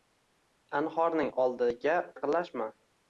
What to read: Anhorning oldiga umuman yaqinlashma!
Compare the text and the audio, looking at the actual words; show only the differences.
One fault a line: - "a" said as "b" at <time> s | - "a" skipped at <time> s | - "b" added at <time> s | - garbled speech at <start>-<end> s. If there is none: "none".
- "umuman" skipped at 2.0 s